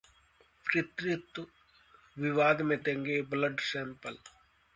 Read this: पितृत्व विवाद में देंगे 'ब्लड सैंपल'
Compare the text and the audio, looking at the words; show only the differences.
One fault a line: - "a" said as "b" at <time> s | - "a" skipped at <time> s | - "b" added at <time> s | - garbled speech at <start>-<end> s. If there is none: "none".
none